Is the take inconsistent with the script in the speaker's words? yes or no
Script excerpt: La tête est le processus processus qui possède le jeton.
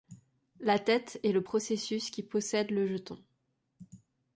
yes